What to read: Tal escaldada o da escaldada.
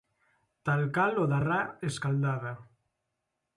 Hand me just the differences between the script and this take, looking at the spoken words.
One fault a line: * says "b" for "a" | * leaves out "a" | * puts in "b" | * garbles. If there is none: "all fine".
* says "cal" for "escaldada"
* puts in "ra"